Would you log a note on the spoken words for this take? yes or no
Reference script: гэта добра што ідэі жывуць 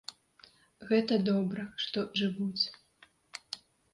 yes